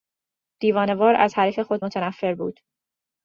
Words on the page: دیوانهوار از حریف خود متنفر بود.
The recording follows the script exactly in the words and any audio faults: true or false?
true